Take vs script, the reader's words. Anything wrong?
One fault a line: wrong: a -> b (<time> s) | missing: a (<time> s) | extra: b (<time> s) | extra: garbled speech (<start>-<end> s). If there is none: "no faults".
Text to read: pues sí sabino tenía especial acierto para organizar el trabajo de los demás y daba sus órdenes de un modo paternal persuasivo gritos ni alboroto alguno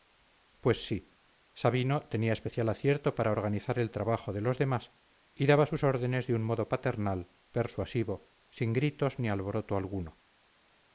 extra: sin (8.5 s)